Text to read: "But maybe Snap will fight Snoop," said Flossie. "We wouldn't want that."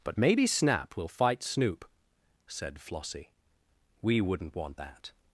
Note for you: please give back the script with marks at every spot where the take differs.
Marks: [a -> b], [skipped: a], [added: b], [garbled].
"But maybe Snap will fight Snoop," said Flossie. "We wouldn't want that."